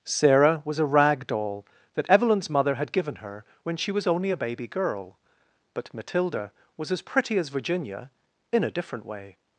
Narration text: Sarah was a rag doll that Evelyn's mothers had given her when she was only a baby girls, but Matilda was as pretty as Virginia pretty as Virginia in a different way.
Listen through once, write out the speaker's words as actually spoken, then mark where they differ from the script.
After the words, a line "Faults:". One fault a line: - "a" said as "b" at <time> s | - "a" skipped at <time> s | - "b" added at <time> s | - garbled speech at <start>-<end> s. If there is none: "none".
Sarah was a rag doll that Evelyn's mother had given her when she was only a baby girl, but Matilda was as pretty as Virginia in a different way.
Faults:
- "mothers" said as "mother" at 2.5 s
- "girls" said as "girl" at 4.7 s
- "pretty as Virginia" skipped at 8.1 s